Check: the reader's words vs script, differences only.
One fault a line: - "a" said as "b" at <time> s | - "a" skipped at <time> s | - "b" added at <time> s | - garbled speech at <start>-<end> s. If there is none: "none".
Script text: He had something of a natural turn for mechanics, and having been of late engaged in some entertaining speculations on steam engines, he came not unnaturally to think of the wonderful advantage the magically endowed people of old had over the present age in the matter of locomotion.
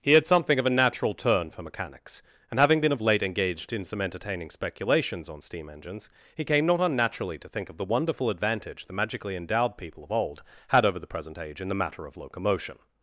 none